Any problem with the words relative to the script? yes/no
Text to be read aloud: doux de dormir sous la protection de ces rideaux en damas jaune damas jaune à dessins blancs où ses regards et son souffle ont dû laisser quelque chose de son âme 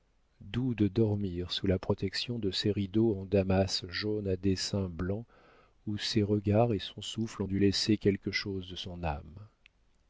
yes